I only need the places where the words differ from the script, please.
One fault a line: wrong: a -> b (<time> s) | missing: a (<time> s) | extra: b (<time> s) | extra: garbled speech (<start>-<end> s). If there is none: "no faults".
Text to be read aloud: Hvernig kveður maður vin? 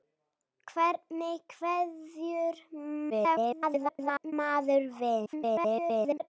extra: garbled speech (3.1-4.3 s)
extra: garbled speech (5.3-6.3 s)